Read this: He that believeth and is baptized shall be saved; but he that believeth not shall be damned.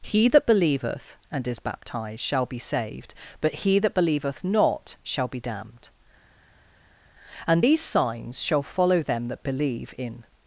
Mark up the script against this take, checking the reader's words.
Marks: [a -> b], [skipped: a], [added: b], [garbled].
He that believeth and is baptized shall be saved; but he that believeth not shall be damned. [added: And these signs shall follow them that believe in]